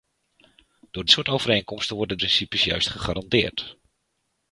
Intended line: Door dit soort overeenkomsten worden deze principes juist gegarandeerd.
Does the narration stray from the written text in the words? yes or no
yes